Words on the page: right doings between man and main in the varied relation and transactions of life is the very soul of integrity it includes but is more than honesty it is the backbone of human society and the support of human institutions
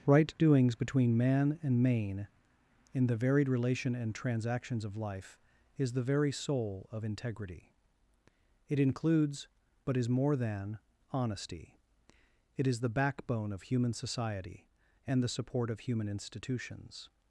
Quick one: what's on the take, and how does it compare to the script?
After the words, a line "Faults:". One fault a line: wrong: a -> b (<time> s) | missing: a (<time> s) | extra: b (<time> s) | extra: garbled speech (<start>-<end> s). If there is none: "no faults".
right doings between man and main in the varied relation and transactions of life is the very soul of integrity it includes but is more than honesty it is the backbone of human society and the support of human institutions
Faults:
no faults